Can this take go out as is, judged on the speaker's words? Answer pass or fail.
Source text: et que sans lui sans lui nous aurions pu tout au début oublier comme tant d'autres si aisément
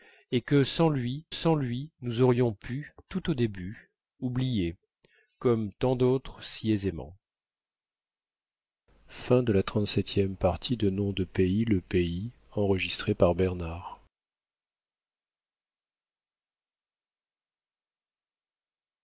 pass